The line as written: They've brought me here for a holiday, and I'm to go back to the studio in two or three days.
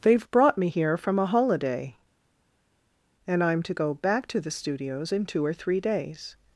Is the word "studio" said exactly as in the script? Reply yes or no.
no